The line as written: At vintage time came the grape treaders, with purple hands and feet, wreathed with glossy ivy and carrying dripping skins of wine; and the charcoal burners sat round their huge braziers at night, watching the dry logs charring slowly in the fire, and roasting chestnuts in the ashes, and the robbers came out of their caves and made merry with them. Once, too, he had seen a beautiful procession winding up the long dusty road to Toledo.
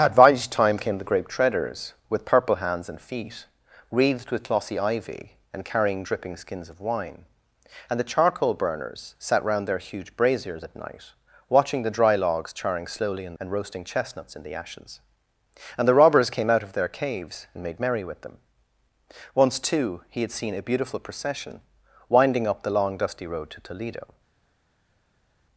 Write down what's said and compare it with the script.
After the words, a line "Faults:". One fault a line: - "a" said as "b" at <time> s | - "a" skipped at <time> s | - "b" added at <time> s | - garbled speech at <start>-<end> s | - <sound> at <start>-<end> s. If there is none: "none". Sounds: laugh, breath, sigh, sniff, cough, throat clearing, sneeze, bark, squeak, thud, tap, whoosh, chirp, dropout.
At vintage time came the grape treaders, with purple hands and feet, wreathed with glossy ivy and carrying dripping skins of wine; and the charcoal burners sat round their huge braziers at night, watching the dry logs charring slowly in and roasting chestnuts in the ashes, and the robbers came out of their caves and made merry with them. Once, too, he had seen a beautiful procession winding up the long dusty road to Toledo.
Faults:
- "the fire" skipped at 13.3 s